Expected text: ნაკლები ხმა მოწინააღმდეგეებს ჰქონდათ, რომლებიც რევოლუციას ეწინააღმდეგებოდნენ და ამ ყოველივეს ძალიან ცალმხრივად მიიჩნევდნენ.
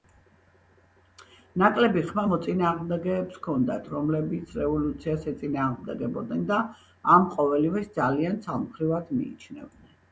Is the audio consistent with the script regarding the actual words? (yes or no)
yes